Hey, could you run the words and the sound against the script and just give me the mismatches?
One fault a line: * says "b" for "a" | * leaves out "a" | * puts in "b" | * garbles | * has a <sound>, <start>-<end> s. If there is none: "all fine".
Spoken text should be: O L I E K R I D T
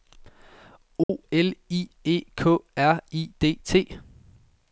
* has a dropout, 1.0-1.1 s